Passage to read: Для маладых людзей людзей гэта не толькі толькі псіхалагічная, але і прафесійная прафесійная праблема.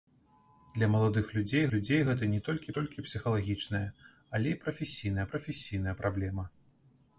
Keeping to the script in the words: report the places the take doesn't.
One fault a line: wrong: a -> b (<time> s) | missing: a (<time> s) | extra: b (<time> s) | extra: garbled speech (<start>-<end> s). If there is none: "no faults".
no faults